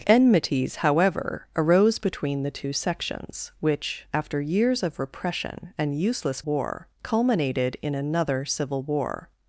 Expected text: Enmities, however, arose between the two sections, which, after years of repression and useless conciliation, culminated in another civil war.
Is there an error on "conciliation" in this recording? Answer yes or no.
yes